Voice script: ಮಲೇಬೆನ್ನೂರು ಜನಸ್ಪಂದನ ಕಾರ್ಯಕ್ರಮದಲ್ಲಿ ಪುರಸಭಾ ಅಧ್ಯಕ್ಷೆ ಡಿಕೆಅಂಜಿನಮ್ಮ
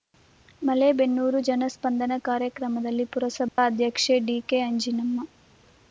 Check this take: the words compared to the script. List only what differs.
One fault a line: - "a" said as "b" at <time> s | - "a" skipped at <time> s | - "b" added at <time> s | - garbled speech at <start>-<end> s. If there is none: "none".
none